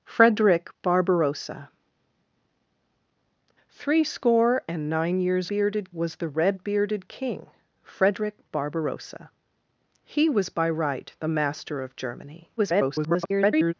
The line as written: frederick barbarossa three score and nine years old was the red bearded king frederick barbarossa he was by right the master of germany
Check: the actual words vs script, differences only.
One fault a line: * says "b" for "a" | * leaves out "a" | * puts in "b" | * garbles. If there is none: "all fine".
* says "bearded" for "old"
* garbles